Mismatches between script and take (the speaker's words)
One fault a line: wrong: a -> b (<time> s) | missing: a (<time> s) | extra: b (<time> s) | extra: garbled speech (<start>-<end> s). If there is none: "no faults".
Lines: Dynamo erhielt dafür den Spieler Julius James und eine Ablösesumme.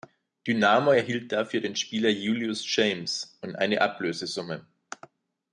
no faults